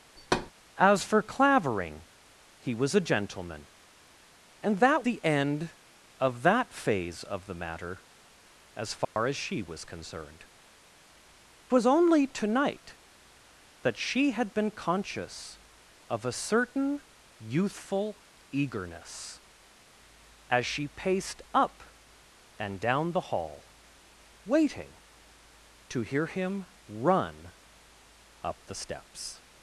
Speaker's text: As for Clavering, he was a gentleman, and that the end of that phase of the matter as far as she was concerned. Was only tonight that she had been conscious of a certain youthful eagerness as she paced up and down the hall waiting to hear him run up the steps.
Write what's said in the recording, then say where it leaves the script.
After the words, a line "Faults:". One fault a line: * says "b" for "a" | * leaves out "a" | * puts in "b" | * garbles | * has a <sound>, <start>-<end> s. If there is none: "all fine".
As for Clavering, he was a gentleman, and that the end of that phase of the matter as far as she was concerned. Was only tonight that she had been conscious of a certain youthful eagerness as she paced up and down the hall waiting to hear him run up the steps.
Faults:
* has a thud, 0.2-0.5 s
* has a dropout, 9.0-9.2 s